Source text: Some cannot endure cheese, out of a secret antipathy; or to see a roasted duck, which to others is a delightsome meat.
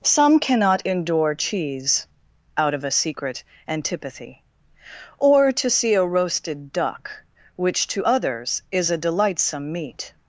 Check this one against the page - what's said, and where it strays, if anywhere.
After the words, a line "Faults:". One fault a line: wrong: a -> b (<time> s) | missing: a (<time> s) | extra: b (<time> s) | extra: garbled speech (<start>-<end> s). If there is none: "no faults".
Some cannot endure cheese, out of a secret antipathy; or to see a roasted duck, which to others is a delightsome meat.
Faults:
no faults